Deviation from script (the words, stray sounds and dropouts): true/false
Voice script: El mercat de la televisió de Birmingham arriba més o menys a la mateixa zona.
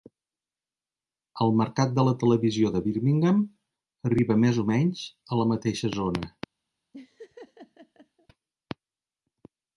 true